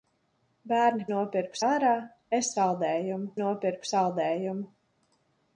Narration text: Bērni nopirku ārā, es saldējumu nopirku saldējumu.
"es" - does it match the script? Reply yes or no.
yes